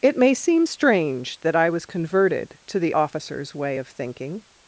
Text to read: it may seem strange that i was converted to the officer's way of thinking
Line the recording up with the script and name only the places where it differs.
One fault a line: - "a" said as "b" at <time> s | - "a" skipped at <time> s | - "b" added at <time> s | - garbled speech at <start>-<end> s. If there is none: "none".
none